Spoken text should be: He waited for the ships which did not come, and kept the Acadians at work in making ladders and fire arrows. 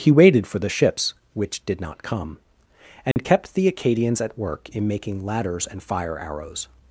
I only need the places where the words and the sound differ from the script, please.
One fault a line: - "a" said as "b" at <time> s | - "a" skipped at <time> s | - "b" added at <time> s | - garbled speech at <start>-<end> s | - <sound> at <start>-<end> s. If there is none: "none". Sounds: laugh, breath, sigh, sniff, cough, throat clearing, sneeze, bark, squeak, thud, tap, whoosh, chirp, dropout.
- dropout at 3.1-3.2 s